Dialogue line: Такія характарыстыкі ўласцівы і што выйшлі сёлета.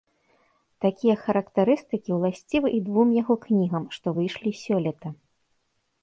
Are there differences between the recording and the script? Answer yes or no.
yes